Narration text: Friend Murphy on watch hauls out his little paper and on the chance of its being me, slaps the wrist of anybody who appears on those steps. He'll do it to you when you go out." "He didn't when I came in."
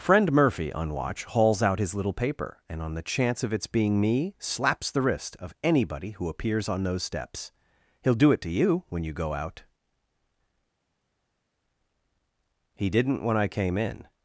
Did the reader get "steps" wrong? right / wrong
right